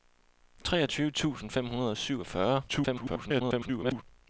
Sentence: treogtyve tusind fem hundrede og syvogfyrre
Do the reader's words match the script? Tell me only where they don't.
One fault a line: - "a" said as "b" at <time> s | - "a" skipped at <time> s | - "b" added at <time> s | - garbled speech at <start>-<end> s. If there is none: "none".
- garbled speech at 2.7-4.0 s